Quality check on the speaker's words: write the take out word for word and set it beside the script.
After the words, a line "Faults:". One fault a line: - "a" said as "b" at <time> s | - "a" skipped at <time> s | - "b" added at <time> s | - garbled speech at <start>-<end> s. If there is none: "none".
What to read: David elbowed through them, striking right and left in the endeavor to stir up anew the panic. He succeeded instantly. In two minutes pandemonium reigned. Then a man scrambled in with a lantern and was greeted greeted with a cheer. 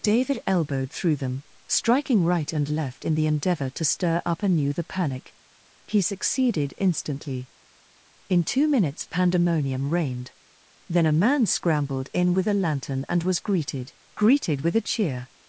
David elbowed through them, striking right and left in the endeavor to stir up anew the panic. He succeeded instantly. In two minutes pandemonium reigned. Then a man scrambled in with a lantern and was greeted greeted with a cheer.
Faults:
none